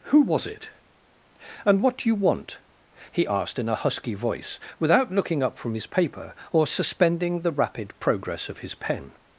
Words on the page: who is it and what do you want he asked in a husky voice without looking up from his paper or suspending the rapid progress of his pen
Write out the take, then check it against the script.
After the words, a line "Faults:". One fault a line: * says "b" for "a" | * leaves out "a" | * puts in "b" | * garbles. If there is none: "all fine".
who was it and what do you want he asked in a husky voice without looking up from his paper or suspending the rapid progress of his pen
Faults:
* says "was" for "is"